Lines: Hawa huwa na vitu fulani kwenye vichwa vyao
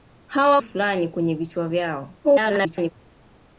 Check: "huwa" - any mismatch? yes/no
yes